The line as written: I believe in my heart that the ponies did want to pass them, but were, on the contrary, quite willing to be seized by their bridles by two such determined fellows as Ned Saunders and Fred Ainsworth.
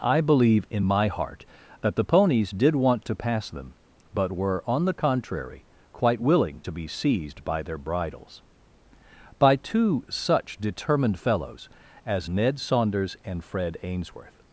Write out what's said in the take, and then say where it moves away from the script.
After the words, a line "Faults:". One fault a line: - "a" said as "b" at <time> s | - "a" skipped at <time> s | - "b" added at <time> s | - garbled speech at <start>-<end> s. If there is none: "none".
I believe in my heart that the ponies did want to pass them, but were, on the contrary, quite willing to be seized by their bridles by two such determined fellows as Ned Saunders and Fred Ainsworth.
Faults:
none